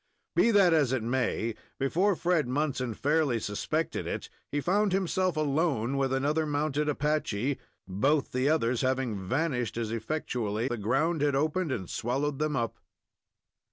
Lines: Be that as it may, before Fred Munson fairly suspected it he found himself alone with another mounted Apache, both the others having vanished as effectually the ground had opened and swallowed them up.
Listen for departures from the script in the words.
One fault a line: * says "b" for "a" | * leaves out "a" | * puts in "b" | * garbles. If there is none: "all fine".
all fine